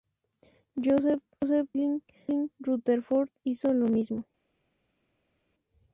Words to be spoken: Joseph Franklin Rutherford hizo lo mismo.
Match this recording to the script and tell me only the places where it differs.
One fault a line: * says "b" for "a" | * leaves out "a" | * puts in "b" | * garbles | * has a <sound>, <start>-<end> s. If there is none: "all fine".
all fine